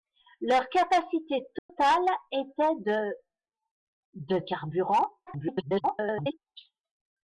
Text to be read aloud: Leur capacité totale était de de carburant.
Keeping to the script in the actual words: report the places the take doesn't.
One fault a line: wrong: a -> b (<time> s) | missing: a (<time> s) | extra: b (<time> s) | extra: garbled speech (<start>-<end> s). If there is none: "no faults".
extra: garbled speech (5.3-6.4 s)